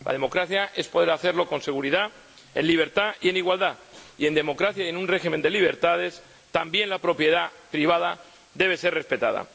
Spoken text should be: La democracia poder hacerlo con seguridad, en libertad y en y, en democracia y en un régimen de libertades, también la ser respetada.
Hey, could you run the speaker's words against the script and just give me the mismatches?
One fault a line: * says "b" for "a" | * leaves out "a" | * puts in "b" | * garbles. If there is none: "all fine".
* puts in "es"
* puts in "igualdad"
* puts in "propiedad privada debe"